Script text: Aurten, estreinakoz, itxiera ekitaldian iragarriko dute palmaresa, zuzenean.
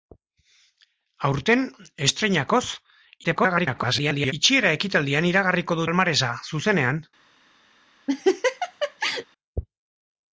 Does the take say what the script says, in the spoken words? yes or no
no